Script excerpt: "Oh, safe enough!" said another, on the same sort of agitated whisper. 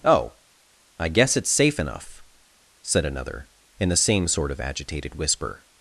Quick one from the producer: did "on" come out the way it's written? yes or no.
no